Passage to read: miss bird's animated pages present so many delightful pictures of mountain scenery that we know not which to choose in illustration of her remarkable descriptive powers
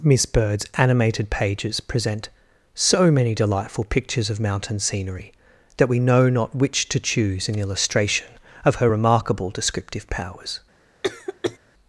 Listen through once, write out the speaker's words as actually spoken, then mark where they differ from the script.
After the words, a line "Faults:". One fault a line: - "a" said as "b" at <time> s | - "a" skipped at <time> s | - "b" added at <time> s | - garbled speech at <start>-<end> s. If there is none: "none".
miss bird's animated pages present so many delightful pictures of mountain scenery that we know not which to choose in illustration of her remarkable descriptive powers
Faults:
none